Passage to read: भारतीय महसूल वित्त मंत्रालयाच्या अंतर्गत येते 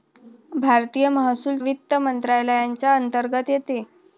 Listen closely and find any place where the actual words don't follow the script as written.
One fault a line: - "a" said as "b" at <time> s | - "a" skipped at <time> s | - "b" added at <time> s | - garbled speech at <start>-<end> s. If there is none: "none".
none